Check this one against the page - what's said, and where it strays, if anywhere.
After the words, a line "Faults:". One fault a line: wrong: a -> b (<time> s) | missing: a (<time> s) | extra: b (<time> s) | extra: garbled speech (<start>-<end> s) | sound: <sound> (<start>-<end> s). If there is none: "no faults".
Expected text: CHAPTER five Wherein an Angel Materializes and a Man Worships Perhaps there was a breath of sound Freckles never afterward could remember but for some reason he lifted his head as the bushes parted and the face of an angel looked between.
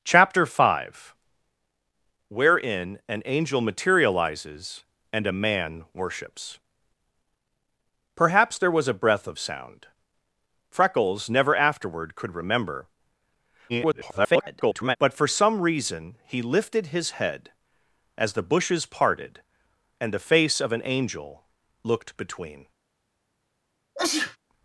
CHAPTER five Wherein an Angel Materializes and a Man Worships Perhaps there was a breath of sound Freckles never afterward could remember [garbled] but for some reason he lifted his head as the bushes parted and the face of an angel looked between.
Faults:
extra: garbled speech (13.7-15.0 s)
sound: sneeze (23.9-24.4 s)